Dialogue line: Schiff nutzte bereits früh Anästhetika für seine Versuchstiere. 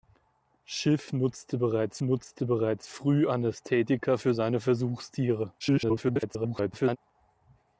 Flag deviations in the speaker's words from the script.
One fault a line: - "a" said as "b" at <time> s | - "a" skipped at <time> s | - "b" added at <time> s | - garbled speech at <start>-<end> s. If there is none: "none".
- "nutzte bereits" added at 2.0 s
- garbled speech at 5.6-7.0 s